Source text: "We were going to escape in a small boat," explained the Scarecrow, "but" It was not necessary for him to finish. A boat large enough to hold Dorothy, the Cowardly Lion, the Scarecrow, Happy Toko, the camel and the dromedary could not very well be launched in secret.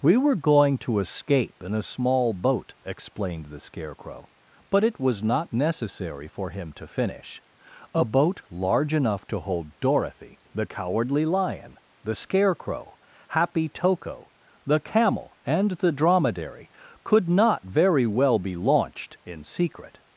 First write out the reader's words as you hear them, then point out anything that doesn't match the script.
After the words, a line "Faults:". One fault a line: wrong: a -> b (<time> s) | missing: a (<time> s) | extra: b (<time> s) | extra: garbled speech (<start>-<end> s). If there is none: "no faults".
"We were going to escape in a small boat," explained the Scarecrow, "but" It was not necessary for him to finish. A boat large enough to hold Dorothy, the Cowardly Lion, the Scarecrow, Happy Toko, the camel and the dromedary could not very well be launched in secret.
Faults:
no faults